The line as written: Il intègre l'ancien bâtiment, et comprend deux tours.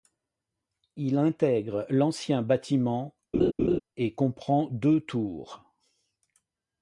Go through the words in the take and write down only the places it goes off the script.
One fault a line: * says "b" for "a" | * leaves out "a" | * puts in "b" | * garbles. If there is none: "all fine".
all fine